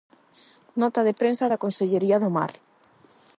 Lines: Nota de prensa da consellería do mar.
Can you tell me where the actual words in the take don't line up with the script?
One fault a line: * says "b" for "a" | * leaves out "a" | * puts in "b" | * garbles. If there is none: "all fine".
all fine